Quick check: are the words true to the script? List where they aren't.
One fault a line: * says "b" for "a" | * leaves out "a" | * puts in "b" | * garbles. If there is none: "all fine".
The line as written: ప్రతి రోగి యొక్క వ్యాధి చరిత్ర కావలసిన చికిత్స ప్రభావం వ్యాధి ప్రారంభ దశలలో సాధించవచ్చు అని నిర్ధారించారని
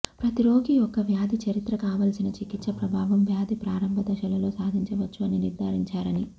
all fine